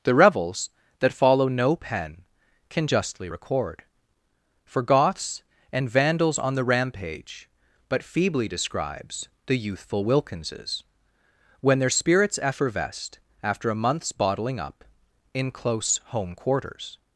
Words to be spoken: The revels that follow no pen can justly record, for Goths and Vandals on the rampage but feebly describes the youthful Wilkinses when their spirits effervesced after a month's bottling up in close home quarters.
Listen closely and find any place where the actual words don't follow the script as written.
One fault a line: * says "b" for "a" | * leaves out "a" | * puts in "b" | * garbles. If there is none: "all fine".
all fine